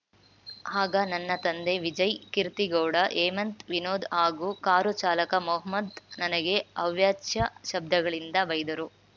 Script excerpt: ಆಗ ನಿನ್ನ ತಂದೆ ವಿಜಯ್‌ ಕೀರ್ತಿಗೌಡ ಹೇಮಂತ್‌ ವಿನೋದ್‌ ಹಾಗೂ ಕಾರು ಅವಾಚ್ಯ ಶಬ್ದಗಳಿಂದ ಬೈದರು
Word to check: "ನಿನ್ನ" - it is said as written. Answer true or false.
false